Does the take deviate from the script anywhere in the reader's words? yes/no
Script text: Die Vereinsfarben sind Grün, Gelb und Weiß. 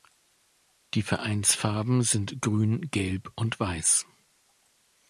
no